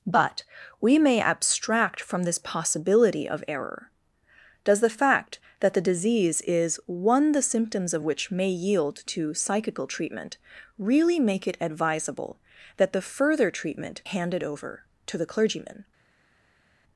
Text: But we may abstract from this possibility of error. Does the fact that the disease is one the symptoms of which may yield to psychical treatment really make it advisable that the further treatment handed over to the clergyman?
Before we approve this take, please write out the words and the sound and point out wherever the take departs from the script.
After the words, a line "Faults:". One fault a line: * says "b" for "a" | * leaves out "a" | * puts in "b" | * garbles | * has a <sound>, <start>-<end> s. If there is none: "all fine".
But we may abstract from this possibility of error. Does the fact that the disease is one the symptoms of which may yield to psychical treatment really make it advisable that the further treatment handed over to the clergyman?
Faults:
all fine